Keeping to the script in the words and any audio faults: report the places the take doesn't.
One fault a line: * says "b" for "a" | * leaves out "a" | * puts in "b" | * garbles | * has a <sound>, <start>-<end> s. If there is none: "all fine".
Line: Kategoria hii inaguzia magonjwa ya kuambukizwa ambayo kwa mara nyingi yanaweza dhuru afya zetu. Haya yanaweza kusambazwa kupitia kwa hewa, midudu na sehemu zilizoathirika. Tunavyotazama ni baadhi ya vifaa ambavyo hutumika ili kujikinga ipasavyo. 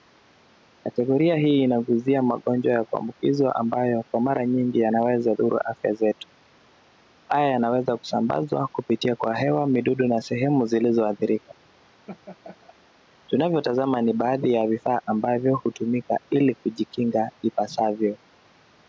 * has a laugh, 12.1-12.7 s